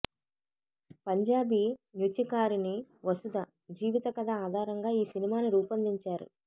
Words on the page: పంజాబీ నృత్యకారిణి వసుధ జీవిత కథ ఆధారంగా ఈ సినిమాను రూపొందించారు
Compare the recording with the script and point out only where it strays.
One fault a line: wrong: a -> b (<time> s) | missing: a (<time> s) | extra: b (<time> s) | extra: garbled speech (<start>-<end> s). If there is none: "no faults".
no faults